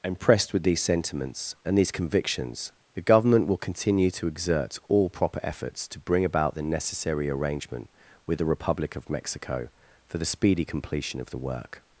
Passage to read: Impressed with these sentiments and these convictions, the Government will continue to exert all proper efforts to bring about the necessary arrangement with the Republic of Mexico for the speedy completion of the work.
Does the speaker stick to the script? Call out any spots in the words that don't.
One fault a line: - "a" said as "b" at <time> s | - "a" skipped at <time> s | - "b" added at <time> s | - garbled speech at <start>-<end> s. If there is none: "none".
none